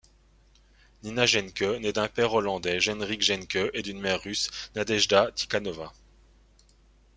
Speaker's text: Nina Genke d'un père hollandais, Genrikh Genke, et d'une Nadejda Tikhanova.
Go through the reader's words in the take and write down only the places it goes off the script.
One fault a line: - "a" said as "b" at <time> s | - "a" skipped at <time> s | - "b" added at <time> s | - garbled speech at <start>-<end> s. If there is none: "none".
- "naît" added at 1.8 s
- "mère russe" added at 4.0 s